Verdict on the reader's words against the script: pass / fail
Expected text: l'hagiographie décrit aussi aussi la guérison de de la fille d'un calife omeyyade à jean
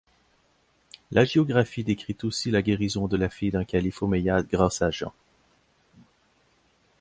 fail